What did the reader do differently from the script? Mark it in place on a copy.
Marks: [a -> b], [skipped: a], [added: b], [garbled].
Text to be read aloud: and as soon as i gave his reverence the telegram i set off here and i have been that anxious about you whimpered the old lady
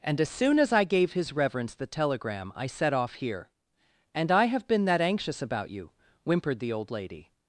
and as soon as i gave his reverence the telegram i set off here and i have been that anxious about you whimpered the old lady